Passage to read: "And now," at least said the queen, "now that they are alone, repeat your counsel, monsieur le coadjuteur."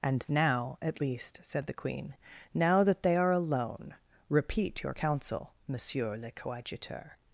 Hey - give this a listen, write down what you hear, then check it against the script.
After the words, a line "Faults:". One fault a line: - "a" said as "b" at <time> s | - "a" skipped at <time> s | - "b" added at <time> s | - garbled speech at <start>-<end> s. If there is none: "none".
"And now," at least said the queen, "now that they are alone, repeat your counsel, monsieur le coadjuteur."
Faults:
none